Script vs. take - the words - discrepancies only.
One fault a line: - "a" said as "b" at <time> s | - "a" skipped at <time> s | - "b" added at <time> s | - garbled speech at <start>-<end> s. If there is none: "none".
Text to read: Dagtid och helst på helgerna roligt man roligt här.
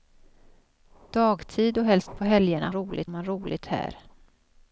none